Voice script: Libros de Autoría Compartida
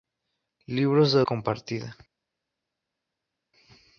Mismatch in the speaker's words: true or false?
true